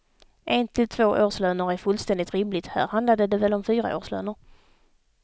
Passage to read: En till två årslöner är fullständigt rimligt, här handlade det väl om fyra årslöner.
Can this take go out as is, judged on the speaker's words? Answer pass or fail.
pass